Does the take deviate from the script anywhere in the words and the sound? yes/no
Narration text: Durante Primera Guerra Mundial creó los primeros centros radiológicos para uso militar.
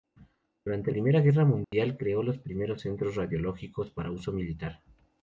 yes